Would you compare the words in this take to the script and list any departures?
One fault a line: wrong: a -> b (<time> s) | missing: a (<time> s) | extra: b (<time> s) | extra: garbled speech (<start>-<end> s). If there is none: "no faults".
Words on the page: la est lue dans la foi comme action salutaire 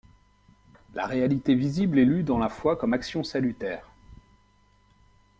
extra: réalité visible (1.1 s)